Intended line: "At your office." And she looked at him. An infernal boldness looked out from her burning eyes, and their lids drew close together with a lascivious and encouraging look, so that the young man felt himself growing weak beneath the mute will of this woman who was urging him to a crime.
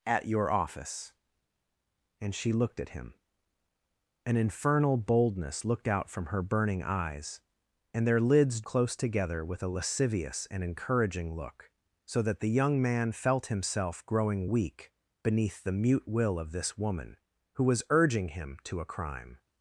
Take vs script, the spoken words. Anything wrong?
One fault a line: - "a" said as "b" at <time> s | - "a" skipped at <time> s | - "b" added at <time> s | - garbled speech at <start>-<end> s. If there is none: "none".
- "drew" skipped at 8.6 s